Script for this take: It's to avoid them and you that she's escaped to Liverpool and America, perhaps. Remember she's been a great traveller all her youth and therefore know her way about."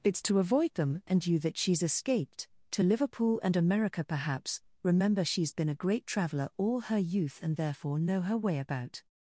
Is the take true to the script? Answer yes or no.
yes